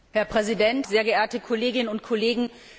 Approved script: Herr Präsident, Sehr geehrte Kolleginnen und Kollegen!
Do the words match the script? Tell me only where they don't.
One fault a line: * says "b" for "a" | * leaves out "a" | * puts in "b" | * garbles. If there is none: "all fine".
all fine